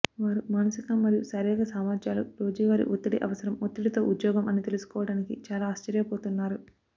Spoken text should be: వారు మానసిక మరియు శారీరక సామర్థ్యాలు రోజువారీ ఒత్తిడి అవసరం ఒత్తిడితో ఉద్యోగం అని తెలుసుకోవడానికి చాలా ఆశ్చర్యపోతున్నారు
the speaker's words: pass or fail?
pass